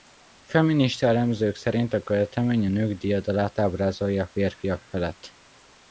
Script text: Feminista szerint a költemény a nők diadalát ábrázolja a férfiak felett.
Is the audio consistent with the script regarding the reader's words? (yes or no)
no